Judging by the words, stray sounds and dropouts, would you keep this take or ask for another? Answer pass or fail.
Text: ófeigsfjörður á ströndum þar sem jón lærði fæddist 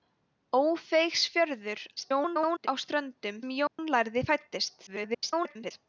fail